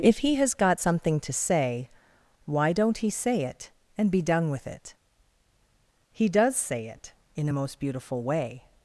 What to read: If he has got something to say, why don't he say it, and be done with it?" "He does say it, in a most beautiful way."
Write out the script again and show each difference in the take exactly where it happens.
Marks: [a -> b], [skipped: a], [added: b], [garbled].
If he has got something to say, why don't he say it, and be done with it?" "He does say it, in a most beautiful way."